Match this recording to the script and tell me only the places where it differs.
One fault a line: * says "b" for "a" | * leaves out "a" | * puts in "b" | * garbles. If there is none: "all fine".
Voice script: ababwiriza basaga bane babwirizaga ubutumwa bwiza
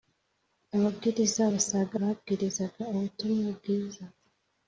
* leaves out "bane"